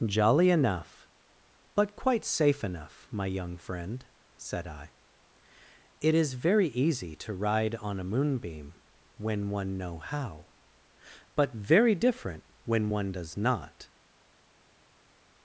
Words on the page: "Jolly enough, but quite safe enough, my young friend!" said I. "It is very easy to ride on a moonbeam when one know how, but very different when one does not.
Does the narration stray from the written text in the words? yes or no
no